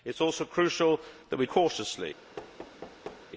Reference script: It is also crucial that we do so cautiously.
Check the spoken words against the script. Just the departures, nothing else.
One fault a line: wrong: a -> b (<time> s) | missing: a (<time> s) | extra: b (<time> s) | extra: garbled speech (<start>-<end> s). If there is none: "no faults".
missing: do so (1.4 s)